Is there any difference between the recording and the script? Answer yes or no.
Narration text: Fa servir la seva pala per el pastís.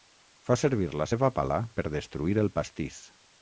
yes